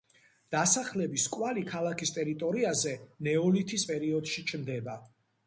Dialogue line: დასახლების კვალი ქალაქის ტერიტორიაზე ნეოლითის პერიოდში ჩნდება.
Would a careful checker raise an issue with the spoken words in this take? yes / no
no